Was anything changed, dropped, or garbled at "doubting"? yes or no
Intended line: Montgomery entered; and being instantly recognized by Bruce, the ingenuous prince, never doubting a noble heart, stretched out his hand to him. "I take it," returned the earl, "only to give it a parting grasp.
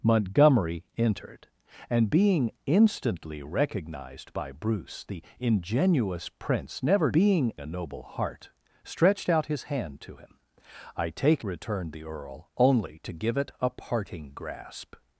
yes